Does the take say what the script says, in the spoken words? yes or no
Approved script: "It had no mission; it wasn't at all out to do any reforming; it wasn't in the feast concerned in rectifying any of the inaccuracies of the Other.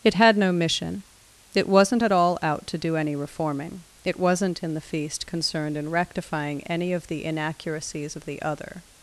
yes